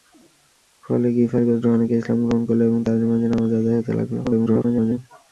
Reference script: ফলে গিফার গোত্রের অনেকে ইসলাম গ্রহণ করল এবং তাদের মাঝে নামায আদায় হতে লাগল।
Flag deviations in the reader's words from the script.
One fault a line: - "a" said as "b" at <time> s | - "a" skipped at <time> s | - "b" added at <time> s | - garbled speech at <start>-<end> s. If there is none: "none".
- garbled speech at 4.2-5.0 s